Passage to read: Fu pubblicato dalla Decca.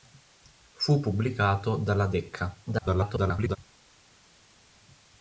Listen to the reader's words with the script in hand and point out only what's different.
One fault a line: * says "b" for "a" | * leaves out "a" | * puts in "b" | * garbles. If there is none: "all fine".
* garbles